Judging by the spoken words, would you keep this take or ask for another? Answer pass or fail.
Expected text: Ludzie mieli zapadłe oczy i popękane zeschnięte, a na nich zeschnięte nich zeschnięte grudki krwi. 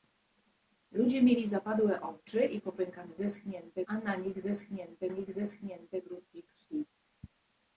pass